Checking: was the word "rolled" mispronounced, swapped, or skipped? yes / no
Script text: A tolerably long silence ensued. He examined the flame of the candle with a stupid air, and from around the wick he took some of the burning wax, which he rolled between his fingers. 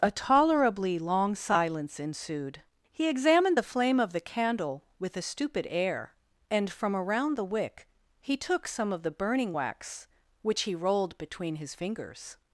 no